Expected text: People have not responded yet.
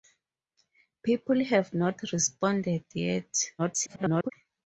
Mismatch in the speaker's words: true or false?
true